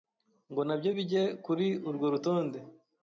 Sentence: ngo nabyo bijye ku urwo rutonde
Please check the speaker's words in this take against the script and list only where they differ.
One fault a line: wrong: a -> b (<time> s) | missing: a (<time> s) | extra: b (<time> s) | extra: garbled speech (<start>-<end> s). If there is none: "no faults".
wrong: ku -> kuri (1.5 s)